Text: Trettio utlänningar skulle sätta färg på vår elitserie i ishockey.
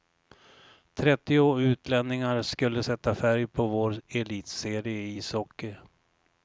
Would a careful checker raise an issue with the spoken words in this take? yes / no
no